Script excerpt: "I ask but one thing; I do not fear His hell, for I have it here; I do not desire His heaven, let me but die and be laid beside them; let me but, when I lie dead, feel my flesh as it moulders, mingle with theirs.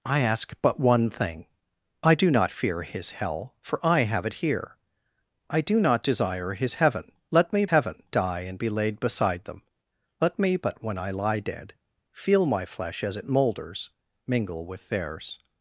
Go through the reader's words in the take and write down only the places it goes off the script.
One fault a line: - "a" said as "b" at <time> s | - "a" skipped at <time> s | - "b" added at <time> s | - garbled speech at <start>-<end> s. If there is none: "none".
- "but" said as "heaven" at 7.7 s